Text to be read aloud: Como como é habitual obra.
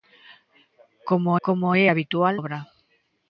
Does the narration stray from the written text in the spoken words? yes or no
no